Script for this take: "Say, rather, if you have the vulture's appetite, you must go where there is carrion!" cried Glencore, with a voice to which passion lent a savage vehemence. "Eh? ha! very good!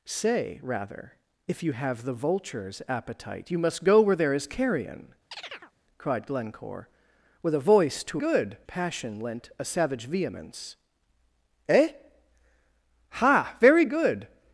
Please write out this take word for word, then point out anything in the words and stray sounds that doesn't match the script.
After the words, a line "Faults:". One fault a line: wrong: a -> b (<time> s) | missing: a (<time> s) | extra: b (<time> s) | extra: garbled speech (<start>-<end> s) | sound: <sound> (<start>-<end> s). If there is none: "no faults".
"Say, rather, if you have the vulture's appetite, you must go where there is carrion!" cried Glencore, with a voice to good passion lent a savage vehemence. "Eh? ha! very good!
Faults:
sound: chirp (5.3-5.7 s)
wrong: which -> good (8.2 s)